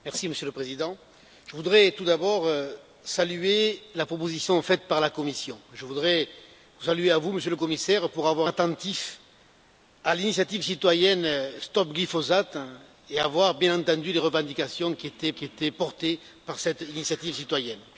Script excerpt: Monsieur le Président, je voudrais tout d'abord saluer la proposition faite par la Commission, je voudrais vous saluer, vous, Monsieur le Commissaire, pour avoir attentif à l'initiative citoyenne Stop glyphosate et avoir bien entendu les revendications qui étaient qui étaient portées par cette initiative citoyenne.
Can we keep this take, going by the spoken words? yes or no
yes